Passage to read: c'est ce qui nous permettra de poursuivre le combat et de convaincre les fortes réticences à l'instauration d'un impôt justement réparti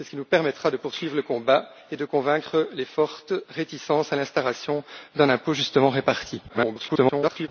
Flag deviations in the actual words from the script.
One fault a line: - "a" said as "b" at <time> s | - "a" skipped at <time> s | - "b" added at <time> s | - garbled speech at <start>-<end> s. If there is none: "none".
- garbled speech at 6.5-7.5 s